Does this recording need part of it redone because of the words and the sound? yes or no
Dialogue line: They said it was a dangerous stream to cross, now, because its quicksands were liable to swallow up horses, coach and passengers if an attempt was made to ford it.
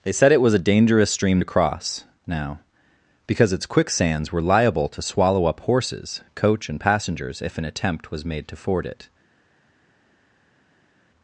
no